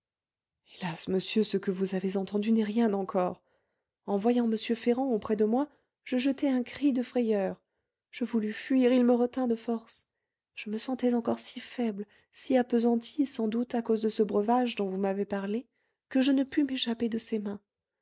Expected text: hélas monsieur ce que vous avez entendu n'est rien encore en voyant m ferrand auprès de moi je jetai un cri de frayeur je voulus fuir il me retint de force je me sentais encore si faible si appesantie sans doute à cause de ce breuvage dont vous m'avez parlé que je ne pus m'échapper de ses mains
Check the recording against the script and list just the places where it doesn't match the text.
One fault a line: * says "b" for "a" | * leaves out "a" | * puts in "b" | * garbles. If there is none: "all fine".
all fine